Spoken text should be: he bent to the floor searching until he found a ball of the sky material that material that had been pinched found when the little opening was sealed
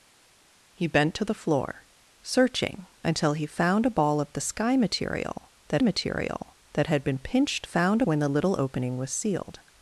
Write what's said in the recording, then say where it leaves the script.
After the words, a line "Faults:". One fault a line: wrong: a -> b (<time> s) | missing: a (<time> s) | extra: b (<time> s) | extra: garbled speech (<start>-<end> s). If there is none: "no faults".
he bent to the floor searching until he found a ball of the sky material that material that had been pinched found when the little opening was sealed
Faults:
no faults